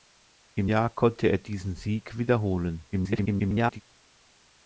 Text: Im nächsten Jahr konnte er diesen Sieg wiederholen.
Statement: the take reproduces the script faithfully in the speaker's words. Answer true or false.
false